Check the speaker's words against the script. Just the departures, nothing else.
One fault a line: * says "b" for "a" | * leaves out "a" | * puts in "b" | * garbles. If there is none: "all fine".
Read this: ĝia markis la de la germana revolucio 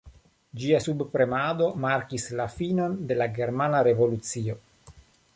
* puts in "subpremado"
* puts in "finon"